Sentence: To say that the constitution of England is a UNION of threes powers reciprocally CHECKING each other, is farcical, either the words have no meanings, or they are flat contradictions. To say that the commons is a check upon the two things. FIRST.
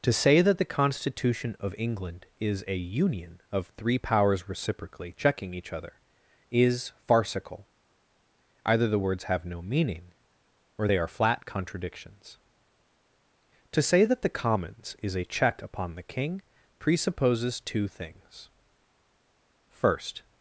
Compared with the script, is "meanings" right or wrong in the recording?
wrong